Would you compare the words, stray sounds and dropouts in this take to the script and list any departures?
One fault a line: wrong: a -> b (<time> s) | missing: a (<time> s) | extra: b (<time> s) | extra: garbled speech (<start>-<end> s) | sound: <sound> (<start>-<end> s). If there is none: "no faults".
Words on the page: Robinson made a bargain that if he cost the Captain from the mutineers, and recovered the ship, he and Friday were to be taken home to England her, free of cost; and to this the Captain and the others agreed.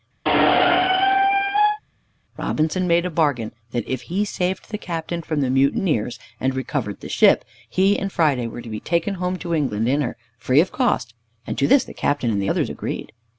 sound: squeak (0.2-1.8 s)
wrong: cost -> saved (4.2 s)
extra: in (9.9 s)